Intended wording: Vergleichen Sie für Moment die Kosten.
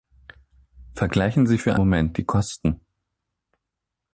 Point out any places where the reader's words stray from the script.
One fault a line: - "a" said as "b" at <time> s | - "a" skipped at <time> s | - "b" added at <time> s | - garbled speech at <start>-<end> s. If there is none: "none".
none